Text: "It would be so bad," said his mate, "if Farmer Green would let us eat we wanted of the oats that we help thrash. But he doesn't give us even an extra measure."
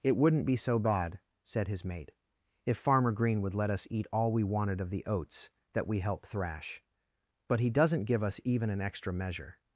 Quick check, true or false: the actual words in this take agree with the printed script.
false